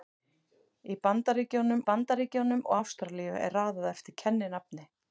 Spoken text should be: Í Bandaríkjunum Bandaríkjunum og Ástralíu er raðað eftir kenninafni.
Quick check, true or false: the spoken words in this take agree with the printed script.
true